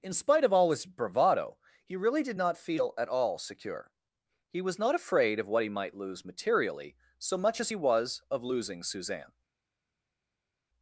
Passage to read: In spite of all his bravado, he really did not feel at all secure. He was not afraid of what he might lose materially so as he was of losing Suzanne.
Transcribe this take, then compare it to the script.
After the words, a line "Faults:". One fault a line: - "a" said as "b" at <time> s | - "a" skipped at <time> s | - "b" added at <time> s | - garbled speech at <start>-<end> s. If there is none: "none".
In spite of all his bravado, he really did not feel at all secure. He was not afraid of what he might lose materially so much as he was of losing Suzanne.
Faults:
- "much" added at 7.4 s